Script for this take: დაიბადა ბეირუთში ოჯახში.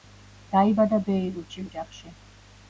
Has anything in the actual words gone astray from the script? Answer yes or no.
no